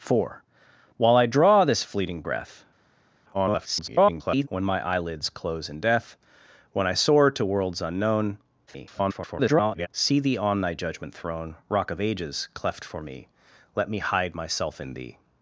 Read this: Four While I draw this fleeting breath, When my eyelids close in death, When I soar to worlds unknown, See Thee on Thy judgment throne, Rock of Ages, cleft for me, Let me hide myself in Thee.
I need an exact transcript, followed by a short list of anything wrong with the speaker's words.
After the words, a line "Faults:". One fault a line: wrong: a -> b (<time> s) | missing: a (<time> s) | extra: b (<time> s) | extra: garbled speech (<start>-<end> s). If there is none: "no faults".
Four While I draw this fleeting breath, [garbled] When my eyelids close in death, When I soar to worlds unknown, [garbled] See Thee on Thy judgment throne, Rock of Ages, cleft for me, Let me hide myself in Thee.
Faults:
extra: garbled speech (3.3-4.5 s)
extra: garbled speech (8.7-9.9 s)